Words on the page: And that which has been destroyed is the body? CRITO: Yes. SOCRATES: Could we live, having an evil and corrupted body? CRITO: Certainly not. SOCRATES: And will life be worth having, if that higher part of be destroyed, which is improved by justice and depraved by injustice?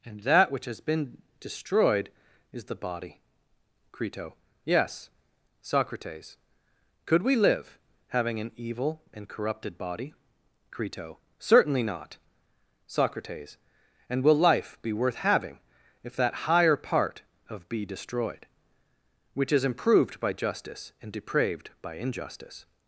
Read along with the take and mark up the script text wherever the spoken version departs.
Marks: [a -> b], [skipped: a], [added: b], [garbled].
And that which has been destroyed is the body? CRITO: Yes. SOCRATES: Could we live, having an evil and corrupted body? CRITO: Certainly not. SOCRATES: And will life be worth having, if that higher part of be destroyed, which is improved by justice and depraved by injustice?